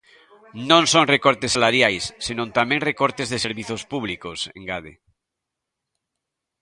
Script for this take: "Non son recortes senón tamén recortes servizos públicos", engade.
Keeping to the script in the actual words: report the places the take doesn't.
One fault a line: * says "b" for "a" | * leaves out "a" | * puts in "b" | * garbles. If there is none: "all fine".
* puts in "salariais"
* puts in "de"